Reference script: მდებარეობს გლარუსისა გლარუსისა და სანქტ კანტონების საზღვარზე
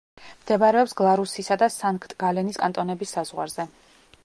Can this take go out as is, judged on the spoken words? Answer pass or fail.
fail